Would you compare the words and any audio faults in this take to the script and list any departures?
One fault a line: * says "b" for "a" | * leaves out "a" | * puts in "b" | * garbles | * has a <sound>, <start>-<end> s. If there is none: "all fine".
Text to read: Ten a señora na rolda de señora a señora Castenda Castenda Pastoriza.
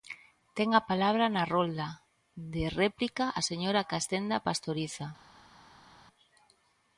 * says "palabra" for "señora"
* says "réplica" for "señora"
* leaves out "Castenda"